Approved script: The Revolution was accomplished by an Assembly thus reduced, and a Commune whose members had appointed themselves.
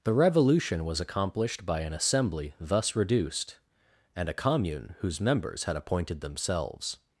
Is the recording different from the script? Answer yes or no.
no